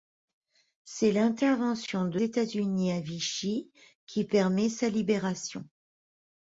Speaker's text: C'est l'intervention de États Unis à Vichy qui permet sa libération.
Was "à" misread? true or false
false